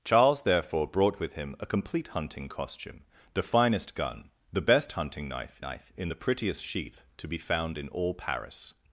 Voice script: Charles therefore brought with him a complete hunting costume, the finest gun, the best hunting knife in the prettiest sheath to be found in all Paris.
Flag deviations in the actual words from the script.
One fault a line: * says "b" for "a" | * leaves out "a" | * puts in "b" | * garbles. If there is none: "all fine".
* puts in "knife"